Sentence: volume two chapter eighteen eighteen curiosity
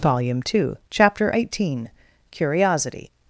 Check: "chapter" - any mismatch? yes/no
no